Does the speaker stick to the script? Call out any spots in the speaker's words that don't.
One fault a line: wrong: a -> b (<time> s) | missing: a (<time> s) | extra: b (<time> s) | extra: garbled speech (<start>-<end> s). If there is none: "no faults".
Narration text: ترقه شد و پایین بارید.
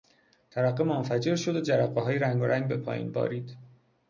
extra: منفجر (0.8 s)
extra: جرقههای رنگارنگ به (1.6 s)